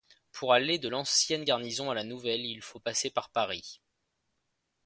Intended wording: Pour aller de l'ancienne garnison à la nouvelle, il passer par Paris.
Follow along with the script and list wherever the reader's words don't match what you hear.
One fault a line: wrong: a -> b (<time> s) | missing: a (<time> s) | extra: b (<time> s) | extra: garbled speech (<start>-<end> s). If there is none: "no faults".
extra: faut (2.6 s)